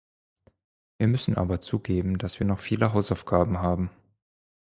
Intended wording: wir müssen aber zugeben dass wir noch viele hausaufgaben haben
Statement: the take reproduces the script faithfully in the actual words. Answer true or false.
true